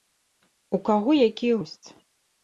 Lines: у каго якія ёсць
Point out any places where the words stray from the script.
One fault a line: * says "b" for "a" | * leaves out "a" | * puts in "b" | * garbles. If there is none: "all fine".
all fine